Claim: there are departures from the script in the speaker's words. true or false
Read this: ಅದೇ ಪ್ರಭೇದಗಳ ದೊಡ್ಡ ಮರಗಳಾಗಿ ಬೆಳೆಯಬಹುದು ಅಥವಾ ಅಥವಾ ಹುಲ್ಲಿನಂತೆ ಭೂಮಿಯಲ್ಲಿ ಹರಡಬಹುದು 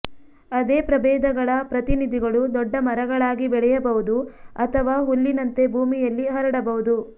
true